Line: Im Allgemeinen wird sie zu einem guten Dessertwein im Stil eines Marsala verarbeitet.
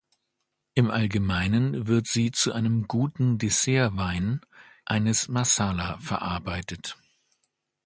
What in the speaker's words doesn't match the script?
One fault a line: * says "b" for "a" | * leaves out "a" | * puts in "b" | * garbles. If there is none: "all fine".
* leaves out "im Stil"